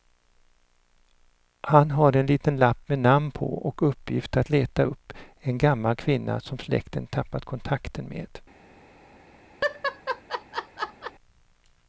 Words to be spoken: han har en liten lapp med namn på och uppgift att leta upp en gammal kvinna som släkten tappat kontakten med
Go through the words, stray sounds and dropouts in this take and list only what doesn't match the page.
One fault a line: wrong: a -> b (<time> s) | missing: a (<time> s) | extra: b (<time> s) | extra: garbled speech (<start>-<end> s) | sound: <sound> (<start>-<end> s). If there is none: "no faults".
sound: laugh (9.6-11.1 s)